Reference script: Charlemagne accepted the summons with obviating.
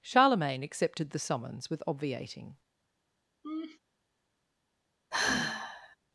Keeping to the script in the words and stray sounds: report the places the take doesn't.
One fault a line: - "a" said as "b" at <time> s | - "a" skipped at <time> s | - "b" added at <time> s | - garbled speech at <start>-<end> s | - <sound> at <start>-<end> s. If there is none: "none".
- laugh at 3.4-3.8 s
- sigh at 5.1-6.0 s